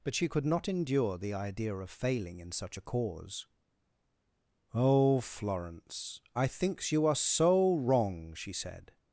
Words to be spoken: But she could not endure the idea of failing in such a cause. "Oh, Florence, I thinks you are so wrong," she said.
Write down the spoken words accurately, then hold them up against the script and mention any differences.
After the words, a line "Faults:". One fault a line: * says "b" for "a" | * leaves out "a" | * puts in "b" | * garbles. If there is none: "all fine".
But she could not endure the idea of failing in such a cause. "Oh, Florence, I thinks you are so wrong," she said.
Faults:
all fine